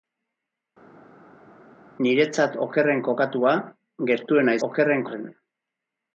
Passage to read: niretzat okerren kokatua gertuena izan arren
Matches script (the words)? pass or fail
fail